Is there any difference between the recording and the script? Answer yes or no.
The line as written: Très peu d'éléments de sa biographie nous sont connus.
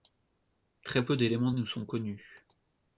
yes